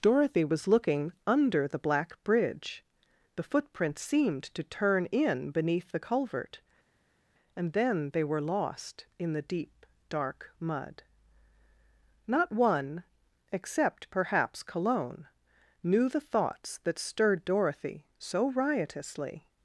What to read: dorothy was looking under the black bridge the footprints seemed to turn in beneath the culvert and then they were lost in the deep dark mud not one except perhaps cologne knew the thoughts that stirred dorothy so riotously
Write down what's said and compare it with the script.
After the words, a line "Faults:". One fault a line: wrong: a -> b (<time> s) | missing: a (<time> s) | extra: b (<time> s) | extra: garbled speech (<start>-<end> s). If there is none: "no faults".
dorothy was looking under the black bridge the footprints seemed to turn in beneath the culvert and then they were lost in the deep dark mud not one except perhaps cologne knew the thoughts that stirred dorothy so riotously
Faults:
no faults